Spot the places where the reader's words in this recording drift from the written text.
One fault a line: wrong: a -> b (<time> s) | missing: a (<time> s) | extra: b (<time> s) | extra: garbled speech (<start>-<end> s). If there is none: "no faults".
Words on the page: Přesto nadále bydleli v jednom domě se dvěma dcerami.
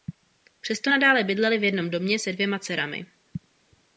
no faults